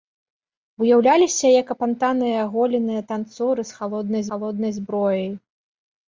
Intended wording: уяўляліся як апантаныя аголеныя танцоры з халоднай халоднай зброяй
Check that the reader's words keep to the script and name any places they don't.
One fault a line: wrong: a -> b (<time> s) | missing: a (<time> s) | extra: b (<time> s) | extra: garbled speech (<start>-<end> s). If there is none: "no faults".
no faults